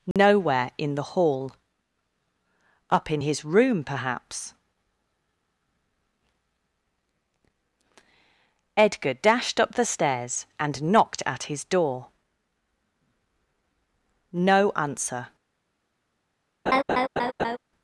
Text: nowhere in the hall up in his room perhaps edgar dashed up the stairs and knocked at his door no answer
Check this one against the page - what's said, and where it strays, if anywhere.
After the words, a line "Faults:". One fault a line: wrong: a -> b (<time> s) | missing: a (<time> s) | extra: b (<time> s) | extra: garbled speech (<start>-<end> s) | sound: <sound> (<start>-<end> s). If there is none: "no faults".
nowhere in the hall up in his room perhaps edgar dashed up the stairs and knocked at his door no answer
Faults:
sound: dropout (0.1-0.2 s)
sound: laugh (16.7-17.6 s)